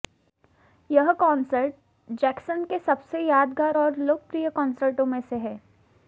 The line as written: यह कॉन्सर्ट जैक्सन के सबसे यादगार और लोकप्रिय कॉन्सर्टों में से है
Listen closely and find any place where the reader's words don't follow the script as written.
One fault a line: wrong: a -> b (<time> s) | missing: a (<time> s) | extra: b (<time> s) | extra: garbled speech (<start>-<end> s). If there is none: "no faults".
no faults